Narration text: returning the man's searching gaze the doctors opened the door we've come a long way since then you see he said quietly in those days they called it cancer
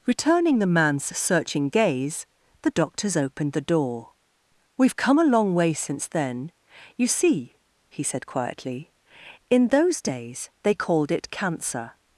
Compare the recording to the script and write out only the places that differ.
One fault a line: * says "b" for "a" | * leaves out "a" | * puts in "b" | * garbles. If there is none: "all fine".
all fine